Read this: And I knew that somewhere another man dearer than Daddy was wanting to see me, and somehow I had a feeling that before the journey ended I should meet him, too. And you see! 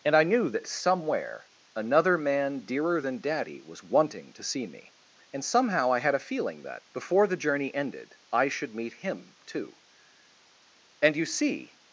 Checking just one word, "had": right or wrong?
right